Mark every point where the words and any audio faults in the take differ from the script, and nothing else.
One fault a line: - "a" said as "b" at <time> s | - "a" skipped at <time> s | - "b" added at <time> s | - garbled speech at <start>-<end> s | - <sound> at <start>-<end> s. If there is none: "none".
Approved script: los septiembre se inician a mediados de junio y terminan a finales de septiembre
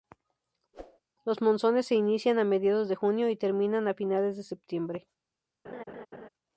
- whoosh at 0.7-1.0 s
- "septiembre" said as "monzones" at 1.4 s
- laugh at 5.6-6.3 s